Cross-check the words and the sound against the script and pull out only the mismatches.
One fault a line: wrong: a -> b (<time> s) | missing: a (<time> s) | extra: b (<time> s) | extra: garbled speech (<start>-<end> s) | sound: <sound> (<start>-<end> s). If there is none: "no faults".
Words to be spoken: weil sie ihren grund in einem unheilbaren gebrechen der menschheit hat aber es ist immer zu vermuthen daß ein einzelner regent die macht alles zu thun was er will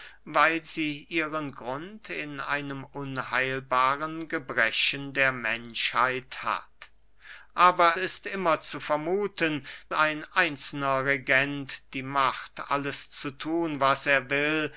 missing: es (8.0 s)
missing: daß (9.6 s)